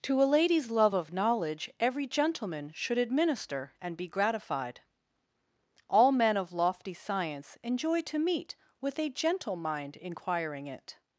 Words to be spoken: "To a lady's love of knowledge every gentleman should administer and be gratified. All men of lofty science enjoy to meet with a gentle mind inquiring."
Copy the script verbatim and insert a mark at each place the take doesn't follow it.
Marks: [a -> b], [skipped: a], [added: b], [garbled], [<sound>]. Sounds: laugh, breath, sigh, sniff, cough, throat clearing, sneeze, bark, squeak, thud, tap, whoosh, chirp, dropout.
"To a lady's love of knowledge every gentleman should administer and be gratified. All men of lofty science enjoy to meet with a gentle mind inquiring." [added: It]